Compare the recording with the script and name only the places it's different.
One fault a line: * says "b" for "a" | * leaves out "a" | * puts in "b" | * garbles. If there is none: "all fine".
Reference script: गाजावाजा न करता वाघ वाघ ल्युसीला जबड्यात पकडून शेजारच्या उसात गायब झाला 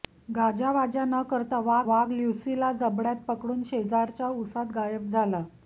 all fine